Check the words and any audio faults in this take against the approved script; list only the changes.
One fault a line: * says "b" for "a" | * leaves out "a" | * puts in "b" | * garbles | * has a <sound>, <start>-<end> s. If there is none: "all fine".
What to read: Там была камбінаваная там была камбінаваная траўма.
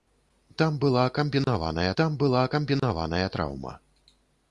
all fine